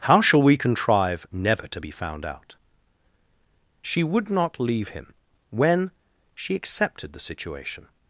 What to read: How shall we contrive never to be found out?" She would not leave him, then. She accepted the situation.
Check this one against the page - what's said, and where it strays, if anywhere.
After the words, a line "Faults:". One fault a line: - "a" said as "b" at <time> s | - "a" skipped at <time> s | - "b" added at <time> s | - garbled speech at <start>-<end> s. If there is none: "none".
How shall we contrive never to be found out?" She would not leave him, when. She accepted the situation.
Faults:
- "then" said as "when" at 5.5 s